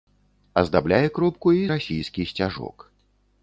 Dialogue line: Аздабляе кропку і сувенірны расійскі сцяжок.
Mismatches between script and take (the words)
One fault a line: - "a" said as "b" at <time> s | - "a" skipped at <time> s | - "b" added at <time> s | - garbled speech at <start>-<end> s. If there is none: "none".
- "сувенірны" skipped at 1.6 s